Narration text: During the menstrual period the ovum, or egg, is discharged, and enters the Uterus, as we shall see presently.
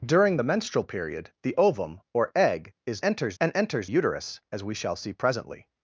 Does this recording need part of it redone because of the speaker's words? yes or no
yes